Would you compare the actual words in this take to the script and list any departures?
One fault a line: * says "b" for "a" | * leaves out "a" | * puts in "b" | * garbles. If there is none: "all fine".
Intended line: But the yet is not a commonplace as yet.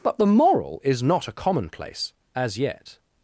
* says "moral" for "yet"